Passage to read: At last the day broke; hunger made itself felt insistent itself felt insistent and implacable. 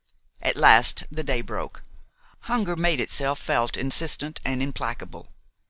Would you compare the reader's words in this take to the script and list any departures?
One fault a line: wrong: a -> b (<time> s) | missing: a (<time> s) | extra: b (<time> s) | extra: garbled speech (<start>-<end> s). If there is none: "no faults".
missing: itself felt insistent (4.4 s)